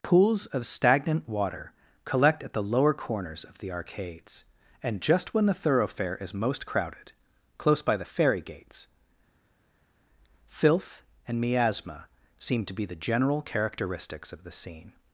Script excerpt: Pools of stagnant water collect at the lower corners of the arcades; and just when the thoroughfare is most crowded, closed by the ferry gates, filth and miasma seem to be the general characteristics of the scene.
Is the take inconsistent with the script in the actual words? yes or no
yes